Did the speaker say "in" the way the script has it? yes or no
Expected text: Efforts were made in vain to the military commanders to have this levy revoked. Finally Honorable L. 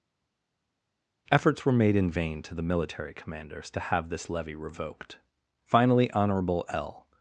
yes